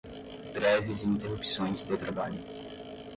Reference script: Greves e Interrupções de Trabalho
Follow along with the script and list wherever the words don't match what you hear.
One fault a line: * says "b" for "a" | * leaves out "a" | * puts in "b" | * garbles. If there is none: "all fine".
all fine